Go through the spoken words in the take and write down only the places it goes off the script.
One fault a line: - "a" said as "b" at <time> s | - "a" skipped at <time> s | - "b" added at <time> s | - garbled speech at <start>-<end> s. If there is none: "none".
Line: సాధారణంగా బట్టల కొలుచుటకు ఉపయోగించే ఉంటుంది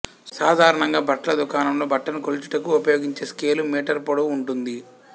- "దుకాణంలో బట్టను" added at 1.4 s
- "స్కేలు మీటరు పొడవు" added at 3.3 s